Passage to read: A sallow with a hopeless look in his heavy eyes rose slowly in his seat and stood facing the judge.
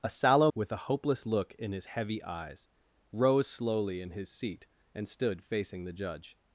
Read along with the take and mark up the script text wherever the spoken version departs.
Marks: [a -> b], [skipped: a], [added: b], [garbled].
A sallow with a hopeless look in his heavy eyes rose slowly in his seat and stood facing the judge.